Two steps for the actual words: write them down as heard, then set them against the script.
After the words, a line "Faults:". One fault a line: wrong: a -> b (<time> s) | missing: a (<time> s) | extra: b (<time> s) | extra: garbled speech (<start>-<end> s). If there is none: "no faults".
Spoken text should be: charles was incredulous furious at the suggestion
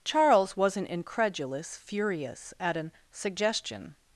charles wasn't incredulous furious at an suggestion
Faults:
wrong: was -> wasn't (0.6 s)
wrong: the -> an (2.8 s)